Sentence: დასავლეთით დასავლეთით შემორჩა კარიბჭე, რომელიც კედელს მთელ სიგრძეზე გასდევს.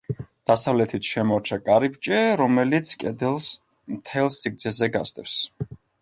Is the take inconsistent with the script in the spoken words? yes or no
yes